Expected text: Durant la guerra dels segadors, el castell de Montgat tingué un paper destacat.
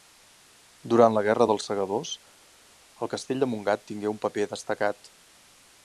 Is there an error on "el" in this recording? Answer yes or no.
no